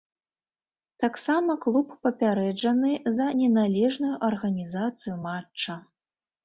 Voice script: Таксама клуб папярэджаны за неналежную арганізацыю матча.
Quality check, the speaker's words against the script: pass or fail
pass